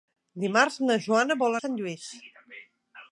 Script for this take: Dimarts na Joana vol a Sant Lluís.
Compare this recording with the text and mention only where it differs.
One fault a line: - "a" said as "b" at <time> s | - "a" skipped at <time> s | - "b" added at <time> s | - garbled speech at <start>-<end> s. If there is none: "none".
none